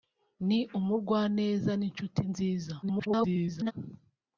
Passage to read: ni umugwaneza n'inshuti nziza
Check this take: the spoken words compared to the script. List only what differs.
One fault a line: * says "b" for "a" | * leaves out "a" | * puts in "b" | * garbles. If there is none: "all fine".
* garbles